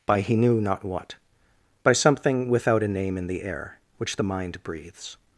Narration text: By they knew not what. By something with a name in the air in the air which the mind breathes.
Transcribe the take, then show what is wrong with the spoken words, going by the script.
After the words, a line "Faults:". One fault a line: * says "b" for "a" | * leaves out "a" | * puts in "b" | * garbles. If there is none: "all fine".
By he knew not what. By something without a name in the air which the mind breathes.
Faults:
* says "he" for "they"
* says "without" for "with"
* leaves out "in the air"